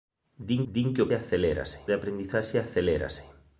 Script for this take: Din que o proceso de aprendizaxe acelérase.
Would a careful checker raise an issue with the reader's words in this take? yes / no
yes